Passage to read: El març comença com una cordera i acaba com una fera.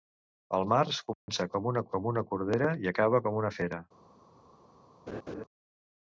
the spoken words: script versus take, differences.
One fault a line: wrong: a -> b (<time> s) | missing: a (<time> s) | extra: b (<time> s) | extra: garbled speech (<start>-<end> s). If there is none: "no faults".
extra: com una (1.9 s)